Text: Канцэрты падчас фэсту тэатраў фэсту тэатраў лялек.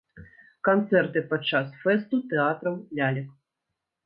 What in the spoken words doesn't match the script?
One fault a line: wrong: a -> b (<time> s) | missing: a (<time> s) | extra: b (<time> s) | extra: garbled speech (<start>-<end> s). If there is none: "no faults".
missing: фэсту тэатраў (2.8 s)